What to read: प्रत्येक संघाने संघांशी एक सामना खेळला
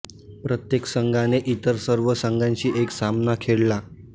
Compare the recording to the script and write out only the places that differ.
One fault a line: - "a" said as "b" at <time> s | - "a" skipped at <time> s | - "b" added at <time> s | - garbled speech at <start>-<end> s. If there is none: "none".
- "इतर सर्व" added at 1.5 s